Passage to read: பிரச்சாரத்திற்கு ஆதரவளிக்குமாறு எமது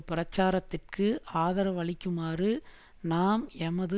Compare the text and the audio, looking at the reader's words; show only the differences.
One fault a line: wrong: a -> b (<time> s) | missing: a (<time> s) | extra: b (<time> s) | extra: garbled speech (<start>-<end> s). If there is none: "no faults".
extra: நாம் (3.0 s)